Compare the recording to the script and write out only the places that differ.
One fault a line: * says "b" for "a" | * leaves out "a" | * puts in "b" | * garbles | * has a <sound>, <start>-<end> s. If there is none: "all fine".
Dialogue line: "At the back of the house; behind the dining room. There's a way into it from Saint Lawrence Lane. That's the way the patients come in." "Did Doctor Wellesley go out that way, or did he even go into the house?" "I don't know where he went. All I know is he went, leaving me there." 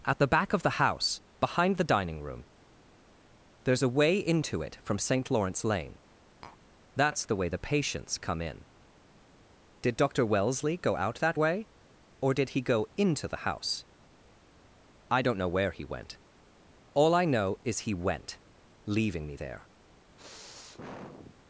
* has a tap, 6.4-6.6 s
* leaves out "even"
* has a sniff, 20.2-21.4 s